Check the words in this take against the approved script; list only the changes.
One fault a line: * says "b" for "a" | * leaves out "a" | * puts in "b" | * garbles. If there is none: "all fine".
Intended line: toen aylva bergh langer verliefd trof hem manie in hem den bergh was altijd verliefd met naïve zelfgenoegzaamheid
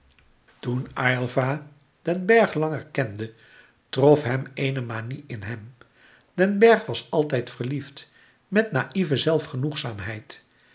* puts in "den"
* says "kende" for "verliefd"
* puts in "eene"